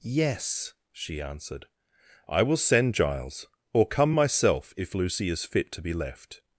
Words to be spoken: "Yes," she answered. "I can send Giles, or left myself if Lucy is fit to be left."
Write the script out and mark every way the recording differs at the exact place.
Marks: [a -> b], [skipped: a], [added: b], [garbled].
"Yes," she answered. "I [can -> will] send Giles, or [left -> come] myself if Lucy is fit to be left."